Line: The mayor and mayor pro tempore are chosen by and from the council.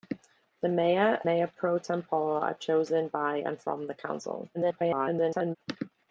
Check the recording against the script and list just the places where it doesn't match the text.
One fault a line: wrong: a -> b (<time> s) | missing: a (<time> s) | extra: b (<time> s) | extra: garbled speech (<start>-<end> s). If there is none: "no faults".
missing: and (1.2 s)
extra: garbled speech (4.5-5.6 s)